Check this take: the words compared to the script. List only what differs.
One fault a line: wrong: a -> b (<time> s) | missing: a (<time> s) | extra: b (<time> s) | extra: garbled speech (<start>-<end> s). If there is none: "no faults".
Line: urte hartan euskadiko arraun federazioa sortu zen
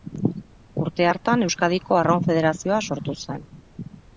no faults